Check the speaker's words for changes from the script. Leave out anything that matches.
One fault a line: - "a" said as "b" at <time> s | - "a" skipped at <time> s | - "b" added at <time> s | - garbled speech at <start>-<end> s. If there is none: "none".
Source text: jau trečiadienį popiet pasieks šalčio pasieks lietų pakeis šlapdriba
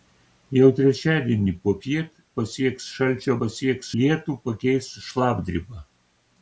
none